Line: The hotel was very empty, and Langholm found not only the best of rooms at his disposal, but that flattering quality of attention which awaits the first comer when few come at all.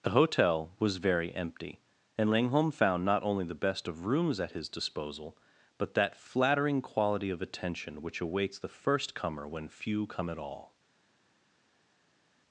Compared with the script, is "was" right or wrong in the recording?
right